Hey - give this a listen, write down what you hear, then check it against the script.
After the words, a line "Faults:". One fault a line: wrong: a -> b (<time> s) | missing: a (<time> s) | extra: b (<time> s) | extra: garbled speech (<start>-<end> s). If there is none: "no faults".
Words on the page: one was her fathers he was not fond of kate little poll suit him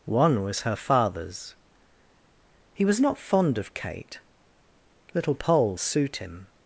one was her fathers he was not fond of kate little poll suit him
Faults:
no faults